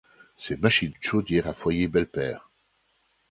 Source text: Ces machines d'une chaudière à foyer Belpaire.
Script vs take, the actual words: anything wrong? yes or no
no